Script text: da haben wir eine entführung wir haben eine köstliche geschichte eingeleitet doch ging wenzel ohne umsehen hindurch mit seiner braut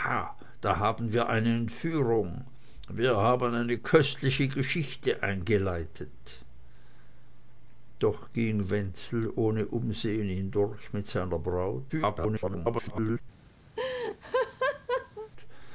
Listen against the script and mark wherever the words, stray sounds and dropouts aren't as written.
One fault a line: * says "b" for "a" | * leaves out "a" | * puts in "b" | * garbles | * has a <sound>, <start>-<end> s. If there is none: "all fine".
* garbles
* has a laugh, 13.8-15.3 s